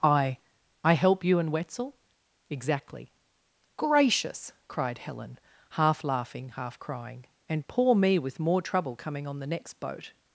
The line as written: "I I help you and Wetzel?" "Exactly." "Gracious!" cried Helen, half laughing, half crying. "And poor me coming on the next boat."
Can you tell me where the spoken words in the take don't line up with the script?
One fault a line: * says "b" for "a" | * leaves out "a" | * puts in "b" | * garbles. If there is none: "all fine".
* puts in "with more trouble"